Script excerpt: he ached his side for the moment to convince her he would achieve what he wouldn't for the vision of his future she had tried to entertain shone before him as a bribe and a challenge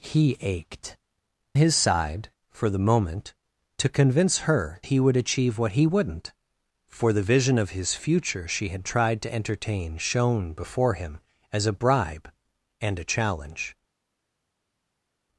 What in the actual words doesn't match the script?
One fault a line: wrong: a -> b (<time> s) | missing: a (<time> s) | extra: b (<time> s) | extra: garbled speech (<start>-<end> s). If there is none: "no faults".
no faults